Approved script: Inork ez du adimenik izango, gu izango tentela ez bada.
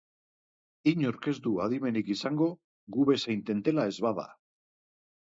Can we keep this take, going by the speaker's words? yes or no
no